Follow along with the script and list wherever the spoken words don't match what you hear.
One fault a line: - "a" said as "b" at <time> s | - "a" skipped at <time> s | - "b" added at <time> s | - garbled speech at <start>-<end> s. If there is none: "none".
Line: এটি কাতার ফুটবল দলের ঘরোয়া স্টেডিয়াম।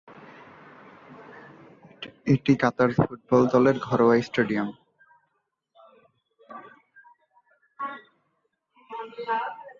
none